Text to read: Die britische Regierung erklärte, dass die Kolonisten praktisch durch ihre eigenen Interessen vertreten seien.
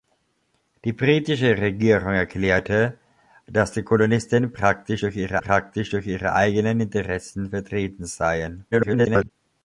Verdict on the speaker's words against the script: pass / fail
fail